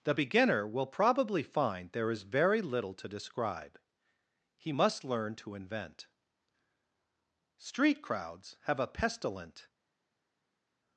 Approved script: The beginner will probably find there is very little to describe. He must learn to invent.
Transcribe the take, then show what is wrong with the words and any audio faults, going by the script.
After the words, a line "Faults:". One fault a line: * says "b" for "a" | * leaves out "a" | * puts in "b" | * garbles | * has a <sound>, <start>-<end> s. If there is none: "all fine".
The beginner will probably find there is very little to describe. He must learn to invent. Street crowds have a pestilent
Faults:
* puts in "Street crowds have a pestilent"